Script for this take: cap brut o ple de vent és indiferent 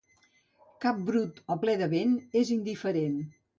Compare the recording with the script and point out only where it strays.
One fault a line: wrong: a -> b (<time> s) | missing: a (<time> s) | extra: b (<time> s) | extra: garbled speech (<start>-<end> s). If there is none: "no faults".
no faults